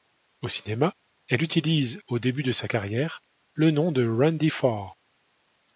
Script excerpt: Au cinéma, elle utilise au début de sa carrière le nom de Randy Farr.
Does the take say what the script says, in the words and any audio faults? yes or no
yes